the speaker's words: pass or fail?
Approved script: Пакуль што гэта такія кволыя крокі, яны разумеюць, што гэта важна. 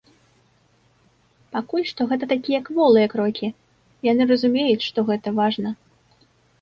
pass